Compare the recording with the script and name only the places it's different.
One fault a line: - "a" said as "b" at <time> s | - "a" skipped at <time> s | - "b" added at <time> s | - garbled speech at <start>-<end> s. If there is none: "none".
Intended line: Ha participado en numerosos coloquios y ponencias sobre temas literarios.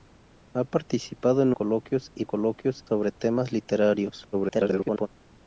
- "numerosos" skipped at 1.5 s
- "ponencias" said as "coloquios" at 2.2 s
- garbled speech at 4.3-5.1 s